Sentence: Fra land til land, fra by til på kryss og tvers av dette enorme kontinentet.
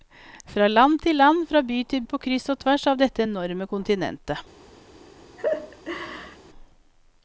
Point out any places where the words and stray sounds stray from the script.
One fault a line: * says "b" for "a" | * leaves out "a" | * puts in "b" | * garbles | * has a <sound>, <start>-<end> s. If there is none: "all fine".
* has a laugh, 5.4-6.4 s